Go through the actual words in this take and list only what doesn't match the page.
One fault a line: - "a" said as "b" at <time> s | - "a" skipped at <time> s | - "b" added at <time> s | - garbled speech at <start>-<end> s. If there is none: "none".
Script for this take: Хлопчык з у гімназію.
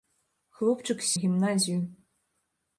none